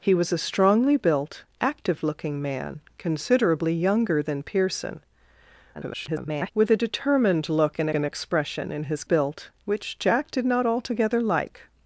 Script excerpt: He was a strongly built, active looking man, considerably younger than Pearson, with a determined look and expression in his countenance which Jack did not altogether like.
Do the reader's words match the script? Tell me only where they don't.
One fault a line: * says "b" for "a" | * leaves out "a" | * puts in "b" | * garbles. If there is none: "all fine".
* garbles
* puts in "and"
* says "built" for "countenance"